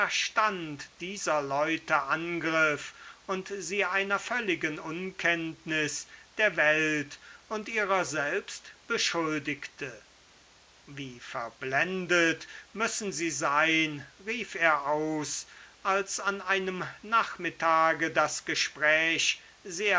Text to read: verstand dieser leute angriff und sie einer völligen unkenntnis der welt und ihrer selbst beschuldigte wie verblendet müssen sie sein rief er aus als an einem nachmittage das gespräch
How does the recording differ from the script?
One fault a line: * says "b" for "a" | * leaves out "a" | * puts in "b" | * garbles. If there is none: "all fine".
all fine